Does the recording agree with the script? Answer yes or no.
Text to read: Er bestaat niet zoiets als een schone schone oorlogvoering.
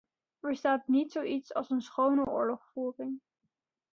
no